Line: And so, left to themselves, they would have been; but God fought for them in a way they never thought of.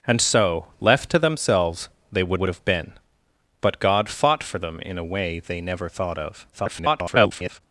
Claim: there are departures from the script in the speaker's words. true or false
true